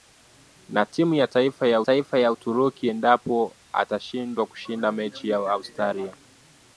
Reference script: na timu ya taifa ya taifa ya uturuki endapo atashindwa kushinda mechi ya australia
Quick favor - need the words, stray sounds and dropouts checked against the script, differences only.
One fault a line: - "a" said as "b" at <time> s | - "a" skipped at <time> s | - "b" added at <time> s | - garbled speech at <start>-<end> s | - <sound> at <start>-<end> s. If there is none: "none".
none